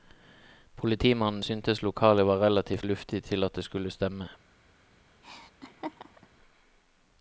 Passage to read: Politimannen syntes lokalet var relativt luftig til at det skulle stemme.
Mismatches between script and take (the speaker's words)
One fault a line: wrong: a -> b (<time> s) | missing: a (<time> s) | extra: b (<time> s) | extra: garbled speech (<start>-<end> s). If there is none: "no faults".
no faults